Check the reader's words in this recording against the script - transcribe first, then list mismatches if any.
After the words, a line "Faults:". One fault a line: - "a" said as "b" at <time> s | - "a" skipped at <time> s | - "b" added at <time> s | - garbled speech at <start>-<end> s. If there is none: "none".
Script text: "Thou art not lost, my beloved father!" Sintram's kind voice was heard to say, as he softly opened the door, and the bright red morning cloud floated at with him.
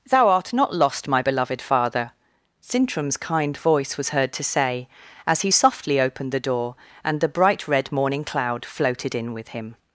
"Thou art not lost, my beloved father!" Sintram's kind voice was heard to say, as he softly opened the door, and the bright red morning cloud floated in with him.
Faults:
- "at" said as "in" at 9.1 s